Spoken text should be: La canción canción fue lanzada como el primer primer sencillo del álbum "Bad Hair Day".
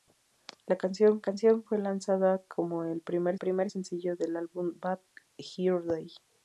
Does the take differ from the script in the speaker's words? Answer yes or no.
no